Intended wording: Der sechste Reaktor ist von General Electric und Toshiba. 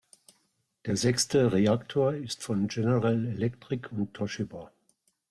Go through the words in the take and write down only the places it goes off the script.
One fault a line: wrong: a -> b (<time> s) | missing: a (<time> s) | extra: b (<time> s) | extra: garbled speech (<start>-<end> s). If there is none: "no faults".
no faults